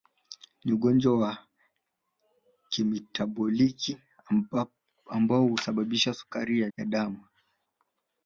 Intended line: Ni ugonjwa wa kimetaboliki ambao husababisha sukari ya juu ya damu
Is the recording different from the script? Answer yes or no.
yes